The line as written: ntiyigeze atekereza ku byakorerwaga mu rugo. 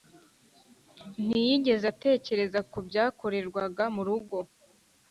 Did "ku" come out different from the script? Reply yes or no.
no